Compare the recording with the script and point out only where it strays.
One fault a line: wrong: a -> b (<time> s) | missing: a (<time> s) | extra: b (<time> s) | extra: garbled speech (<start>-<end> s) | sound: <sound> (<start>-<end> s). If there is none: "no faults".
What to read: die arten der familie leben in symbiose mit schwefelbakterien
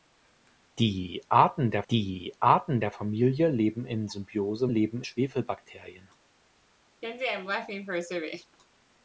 extra: die arten der (1.9 s)
wrong: mit -> leben (4.6 s)
sound: laugh (7.0-8.6 s)